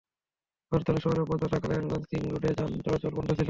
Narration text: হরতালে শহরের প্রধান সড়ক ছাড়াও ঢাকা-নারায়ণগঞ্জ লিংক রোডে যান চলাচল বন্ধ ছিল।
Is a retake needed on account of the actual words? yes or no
yes